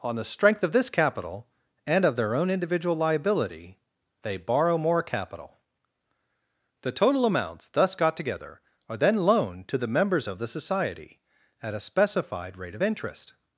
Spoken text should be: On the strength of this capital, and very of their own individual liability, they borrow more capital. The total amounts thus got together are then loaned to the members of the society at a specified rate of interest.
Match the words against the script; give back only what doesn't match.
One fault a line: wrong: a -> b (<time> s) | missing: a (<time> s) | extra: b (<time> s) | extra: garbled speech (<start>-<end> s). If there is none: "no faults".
missing: very (2.0 s)